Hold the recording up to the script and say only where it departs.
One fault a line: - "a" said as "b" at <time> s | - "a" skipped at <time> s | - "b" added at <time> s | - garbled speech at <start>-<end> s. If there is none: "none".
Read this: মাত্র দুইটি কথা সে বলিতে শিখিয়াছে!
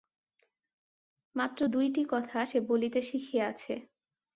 none